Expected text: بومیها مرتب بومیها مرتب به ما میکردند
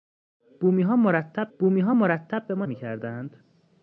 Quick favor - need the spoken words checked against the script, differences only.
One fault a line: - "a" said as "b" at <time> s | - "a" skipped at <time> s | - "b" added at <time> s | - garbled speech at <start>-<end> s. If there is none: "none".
none